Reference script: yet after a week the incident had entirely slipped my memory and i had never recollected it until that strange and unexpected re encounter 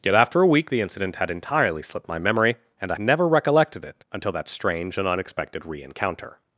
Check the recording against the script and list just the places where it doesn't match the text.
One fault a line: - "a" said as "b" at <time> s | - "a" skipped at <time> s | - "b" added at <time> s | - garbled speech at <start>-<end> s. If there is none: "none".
- "had" skipped at 3.0 s